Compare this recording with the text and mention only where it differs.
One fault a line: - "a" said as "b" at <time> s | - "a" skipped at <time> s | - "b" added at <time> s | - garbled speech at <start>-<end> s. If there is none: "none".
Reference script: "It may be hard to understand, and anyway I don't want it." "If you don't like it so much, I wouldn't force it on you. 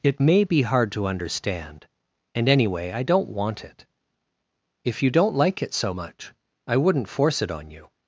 none